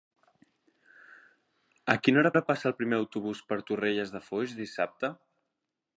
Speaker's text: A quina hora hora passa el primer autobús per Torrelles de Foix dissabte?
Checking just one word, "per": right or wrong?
right